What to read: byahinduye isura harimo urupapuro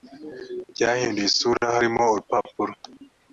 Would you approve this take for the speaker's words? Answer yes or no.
yes